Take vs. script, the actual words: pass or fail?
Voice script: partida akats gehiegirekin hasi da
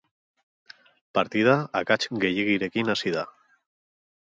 pass